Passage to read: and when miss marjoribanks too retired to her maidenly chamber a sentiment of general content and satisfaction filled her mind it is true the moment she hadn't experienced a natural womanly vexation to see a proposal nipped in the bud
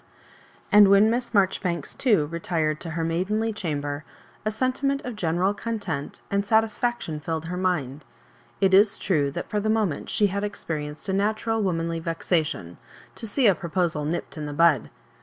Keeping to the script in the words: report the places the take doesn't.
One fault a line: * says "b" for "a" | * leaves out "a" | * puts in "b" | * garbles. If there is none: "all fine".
* puts in "that for"
* says "had" for "hadn't"